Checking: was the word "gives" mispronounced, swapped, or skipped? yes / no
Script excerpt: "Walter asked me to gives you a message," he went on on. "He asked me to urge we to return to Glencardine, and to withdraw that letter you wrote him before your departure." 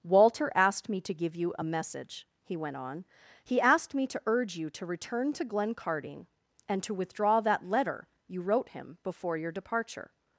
yes